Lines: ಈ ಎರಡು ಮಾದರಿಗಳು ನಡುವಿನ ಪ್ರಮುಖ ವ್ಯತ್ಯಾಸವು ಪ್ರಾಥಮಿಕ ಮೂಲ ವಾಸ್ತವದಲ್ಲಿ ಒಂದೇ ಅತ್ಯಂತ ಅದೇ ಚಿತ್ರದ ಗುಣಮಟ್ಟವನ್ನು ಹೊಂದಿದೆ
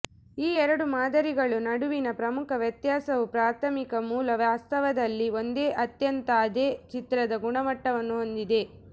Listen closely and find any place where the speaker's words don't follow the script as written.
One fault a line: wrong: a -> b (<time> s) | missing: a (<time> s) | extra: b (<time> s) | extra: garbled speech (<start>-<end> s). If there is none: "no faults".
no faults